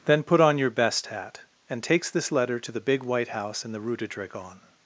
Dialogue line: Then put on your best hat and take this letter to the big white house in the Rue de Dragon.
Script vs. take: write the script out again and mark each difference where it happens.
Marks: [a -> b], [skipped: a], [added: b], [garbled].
Then put on your best hat and [take -> takes] this letter to the big white house in the Rue de Dragon.